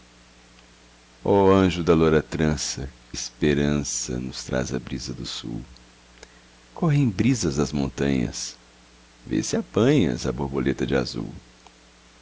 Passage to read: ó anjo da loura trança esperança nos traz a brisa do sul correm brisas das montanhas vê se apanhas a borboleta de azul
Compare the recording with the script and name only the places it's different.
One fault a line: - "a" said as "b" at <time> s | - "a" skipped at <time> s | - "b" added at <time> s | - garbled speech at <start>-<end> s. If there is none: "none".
none